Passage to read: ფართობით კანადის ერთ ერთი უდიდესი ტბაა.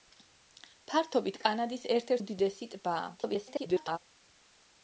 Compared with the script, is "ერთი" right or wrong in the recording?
wrong